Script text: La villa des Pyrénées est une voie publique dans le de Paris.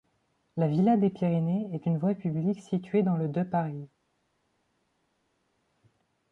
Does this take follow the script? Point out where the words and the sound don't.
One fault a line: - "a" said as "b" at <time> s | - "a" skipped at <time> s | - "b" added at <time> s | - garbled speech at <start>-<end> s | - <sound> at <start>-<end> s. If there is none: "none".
- "située" added at 2.6 s